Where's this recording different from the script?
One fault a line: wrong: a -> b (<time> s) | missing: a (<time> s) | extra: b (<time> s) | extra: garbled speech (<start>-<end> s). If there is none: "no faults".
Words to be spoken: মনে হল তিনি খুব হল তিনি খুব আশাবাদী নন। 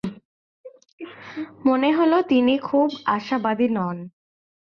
missing: হল তিনি খুব (2.9 s)